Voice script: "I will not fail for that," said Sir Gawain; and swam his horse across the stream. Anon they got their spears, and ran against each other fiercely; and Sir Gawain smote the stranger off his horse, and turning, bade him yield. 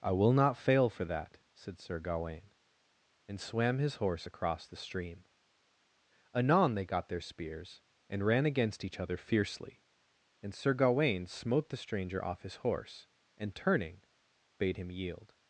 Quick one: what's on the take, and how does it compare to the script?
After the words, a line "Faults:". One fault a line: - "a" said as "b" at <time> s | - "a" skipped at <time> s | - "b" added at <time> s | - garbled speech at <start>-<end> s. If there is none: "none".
"I will not fail for that," said Sir Gawain; and swam his horse across the stream. Anon they got their spears, and ran against each other fiercely; and Sir Gawain smote the stranger off his horse, and turning, bade him yield.
Faults:
none